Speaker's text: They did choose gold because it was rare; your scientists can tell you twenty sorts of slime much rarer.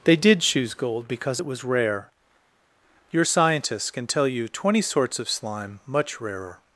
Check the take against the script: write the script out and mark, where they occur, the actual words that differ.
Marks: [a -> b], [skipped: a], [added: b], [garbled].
They did choose gold because it was rare; your scientists can tell you twenty sorts of slime much rarer.